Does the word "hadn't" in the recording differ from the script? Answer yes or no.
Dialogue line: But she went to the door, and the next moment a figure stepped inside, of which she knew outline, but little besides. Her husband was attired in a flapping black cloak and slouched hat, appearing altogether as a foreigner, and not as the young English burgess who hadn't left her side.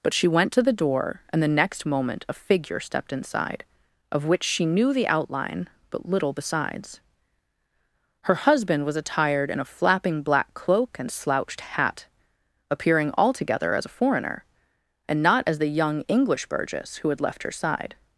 yes